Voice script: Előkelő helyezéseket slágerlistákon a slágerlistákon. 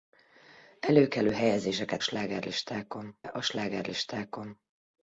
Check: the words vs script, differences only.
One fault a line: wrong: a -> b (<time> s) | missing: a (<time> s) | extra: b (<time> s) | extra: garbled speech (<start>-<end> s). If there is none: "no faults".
no faults